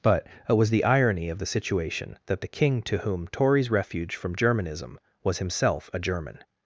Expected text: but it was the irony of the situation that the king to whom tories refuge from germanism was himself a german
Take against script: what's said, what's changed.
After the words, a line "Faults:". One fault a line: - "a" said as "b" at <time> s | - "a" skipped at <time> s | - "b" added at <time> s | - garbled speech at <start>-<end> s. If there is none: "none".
but it was the irony of the situation that the king to whom tories refuge from germanism was himself a german
Faults:
none